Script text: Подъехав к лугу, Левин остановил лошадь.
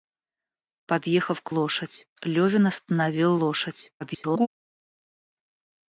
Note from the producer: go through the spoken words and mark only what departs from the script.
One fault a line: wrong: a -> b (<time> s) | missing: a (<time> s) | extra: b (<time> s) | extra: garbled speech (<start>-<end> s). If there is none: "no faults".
wrong: лугу -> лошадь (1.5 s)
extra: garbled speech (4.0-4.5 s)